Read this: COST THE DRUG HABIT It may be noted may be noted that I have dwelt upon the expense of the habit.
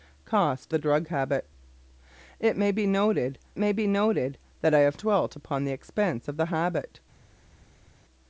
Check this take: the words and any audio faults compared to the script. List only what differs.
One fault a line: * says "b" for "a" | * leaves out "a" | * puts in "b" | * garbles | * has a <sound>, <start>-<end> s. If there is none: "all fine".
all fine